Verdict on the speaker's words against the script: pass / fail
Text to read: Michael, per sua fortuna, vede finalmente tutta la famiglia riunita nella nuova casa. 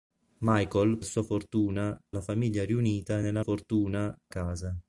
fail